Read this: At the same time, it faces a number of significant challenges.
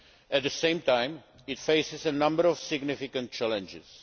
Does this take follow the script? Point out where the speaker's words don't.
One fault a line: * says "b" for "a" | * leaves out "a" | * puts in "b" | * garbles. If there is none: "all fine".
all fine